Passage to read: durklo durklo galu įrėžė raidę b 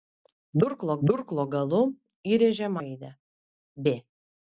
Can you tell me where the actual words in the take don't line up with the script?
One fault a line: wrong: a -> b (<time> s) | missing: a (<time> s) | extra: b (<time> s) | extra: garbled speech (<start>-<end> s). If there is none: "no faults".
no faults